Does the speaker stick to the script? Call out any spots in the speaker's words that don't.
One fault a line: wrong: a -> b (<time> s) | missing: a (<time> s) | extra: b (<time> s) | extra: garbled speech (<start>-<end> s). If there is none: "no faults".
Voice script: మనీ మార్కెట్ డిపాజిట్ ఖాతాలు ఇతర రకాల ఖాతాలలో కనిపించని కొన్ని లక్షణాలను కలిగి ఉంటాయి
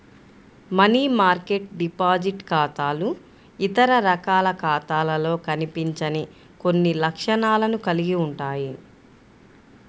no faults